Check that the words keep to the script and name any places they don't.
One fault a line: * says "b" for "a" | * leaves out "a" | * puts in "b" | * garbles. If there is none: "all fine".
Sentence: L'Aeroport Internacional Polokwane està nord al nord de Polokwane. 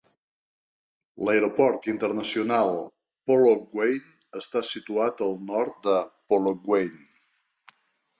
* says "situat" for "nord"